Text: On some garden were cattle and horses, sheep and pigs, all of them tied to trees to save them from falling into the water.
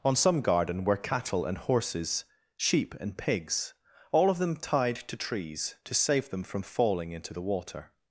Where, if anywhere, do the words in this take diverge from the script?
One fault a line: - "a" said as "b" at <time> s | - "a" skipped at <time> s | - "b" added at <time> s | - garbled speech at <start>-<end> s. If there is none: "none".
none